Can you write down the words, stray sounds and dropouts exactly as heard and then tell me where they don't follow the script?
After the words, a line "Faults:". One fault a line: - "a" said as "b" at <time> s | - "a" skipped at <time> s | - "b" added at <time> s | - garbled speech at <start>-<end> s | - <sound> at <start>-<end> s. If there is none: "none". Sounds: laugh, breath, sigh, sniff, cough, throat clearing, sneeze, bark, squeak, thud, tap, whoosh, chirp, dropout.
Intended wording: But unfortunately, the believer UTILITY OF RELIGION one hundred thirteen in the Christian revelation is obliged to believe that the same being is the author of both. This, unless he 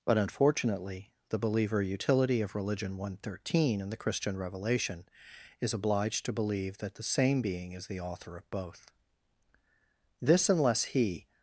But unfortunately, the believer UTILITY OF RELIGION one hundred thirteen in the Christian revelation is obliged to believe that the same being is the author of both. This, unless he
Faults:
none